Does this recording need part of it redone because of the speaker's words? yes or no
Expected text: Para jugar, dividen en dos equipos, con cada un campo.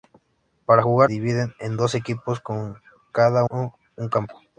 no